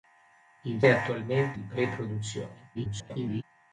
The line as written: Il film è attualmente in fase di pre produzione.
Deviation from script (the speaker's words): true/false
true